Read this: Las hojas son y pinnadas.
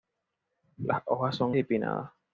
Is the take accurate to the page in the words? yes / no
yes